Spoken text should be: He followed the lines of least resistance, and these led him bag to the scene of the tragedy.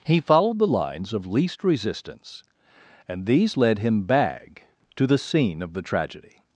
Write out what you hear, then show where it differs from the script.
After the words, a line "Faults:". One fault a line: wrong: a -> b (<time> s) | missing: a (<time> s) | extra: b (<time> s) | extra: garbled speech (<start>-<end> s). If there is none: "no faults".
He followed the lines of least resistance, and these led him bag to the scene of the tragedy.
Faults:
no faults